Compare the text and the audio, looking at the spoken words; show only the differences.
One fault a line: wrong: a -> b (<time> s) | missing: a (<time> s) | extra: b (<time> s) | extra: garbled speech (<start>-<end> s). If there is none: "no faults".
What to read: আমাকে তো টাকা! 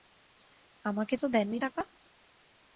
extra: দেননি (1.3 s)